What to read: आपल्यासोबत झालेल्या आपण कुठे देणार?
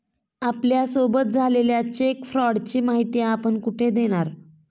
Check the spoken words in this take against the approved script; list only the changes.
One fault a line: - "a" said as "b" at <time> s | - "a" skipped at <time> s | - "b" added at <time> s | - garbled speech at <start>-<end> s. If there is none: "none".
- "चेक फ्रॉडची माहिती" added at 1.9 s